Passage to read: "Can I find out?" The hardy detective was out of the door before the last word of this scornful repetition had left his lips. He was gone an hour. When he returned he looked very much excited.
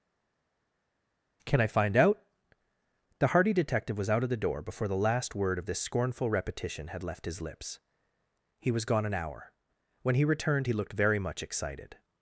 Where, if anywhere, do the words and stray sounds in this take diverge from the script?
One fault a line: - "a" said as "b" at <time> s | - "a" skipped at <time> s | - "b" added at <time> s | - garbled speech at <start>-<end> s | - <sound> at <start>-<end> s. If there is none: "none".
none